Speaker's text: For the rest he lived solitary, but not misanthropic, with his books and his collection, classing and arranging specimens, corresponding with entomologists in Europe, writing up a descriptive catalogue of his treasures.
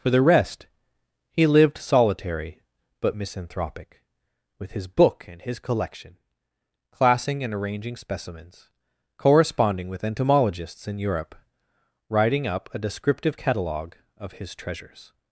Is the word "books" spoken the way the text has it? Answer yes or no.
no